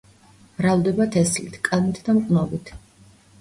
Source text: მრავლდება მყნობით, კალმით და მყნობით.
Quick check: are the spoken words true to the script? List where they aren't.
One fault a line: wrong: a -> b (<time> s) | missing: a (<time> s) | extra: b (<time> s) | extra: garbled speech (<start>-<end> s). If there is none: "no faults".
wrong: მყნობით -> თესლით (1.2 s)